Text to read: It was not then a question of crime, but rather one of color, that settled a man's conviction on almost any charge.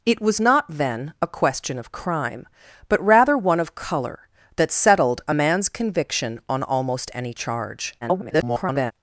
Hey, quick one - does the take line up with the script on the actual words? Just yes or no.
no